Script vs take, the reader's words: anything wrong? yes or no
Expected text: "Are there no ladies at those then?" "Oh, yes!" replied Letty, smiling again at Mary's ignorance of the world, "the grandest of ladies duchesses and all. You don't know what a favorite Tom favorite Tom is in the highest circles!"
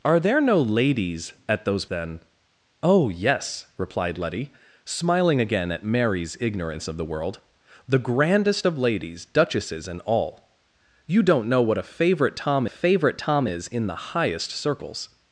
no